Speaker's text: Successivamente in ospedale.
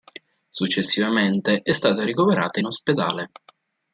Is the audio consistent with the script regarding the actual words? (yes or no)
no